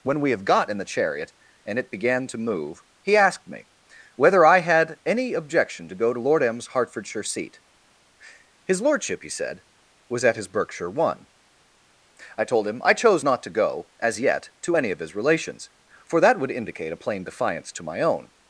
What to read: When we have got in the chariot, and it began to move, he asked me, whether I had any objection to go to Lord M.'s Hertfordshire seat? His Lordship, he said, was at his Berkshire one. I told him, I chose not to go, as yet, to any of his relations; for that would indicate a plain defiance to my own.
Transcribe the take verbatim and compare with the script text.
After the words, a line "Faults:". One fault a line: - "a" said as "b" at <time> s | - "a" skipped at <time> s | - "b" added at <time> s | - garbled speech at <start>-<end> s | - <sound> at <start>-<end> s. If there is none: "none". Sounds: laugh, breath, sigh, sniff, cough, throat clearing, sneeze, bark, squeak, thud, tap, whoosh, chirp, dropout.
When we have got in the chariot, and it began to move, he asked me, whether I had any objection to go to Lord M.'s Hertfordshire seat? His Lordship, he said, was at his Berkshire one. I told him, I chose not to go, as yet, to any of his relations; for that would indicate a plain defiance to my own.
Faults:
none